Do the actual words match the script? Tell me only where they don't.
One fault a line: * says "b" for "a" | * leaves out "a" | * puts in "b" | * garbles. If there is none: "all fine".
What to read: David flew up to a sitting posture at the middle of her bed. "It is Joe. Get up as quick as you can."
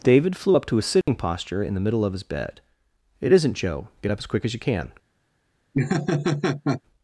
* says "in" for "at"
* says "his" for "her"
* says "isn't" for "is"